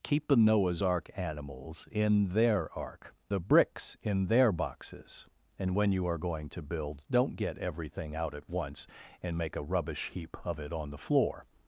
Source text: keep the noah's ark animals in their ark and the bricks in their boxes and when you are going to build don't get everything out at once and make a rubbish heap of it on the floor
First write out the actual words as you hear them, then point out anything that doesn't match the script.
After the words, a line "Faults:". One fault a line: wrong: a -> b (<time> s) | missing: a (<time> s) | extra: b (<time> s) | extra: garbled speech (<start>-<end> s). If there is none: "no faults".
keep the noah's ark animals in their ark the bricks in their boxes and when you are going to build don't get everything out at once and make a rubbish heap of it on the floor
Faults:
missing: and (3.1 s)